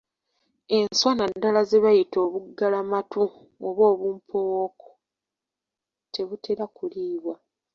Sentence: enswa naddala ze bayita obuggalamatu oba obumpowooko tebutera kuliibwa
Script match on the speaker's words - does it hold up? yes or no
yes